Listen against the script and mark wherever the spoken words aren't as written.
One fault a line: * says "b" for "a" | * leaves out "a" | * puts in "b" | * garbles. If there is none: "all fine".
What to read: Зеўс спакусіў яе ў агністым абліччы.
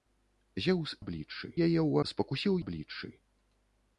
* says "абліччы" for "спакусіў"
* says "спакусіў" for "агністым"